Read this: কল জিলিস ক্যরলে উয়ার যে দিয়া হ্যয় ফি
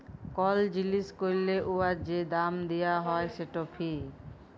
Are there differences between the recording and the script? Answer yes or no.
yes